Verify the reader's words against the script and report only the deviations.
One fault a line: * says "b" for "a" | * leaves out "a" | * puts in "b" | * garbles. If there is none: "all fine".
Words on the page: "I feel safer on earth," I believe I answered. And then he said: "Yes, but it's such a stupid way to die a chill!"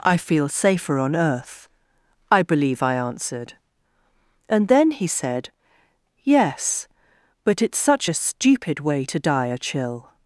all fine